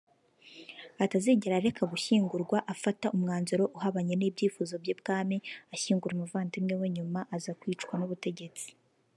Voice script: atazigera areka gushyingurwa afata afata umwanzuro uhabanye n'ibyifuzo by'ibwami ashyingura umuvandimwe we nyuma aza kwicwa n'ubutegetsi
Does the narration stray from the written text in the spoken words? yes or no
yes